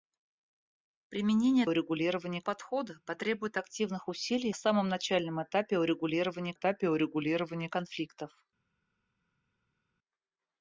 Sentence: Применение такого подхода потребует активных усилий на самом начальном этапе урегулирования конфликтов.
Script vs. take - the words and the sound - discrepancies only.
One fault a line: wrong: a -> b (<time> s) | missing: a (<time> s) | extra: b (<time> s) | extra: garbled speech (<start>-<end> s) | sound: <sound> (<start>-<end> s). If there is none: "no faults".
wrong: такого -> урегулирования (1.7 s)
missing: на (4.6 s)
extra: этапе урегулирования (6.5 s)